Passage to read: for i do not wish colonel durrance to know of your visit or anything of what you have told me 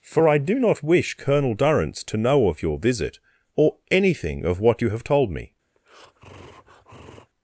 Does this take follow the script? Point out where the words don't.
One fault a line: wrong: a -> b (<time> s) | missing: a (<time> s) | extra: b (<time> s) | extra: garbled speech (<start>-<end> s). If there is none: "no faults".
no faults